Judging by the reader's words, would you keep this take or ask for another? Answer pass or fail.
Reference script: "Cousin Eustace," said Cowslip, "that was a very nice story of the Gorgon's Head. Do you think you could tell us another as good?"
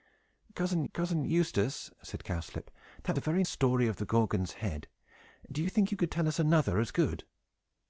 fail